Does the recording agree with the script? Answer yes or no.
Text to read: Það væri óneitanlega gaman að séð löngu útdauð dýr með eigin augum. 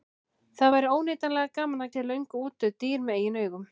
yes